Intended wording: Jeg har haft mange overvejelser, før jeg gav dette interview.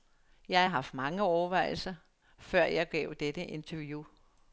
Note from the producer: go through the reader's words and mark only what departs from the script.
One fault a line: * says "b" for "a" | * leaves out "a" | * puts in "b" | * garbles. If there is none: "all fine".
all fine